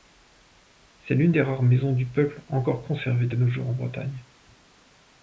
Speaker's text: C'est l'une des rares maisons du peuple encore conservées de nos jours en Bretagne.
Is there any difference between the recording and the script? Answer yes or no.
no